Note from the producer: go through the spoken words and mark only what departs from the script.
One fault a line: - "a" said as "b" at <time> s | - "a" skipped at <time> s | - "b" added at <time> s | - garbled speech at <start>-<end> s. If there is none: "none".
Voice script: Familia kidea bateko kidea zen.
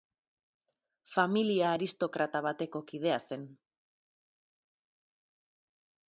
- "kidea" said as "aristokrata" at 1.7 s